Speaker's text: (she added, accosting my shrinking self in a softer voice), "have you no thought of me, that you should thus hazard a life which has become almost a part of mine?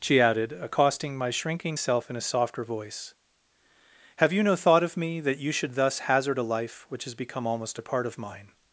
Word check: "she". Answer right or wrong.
right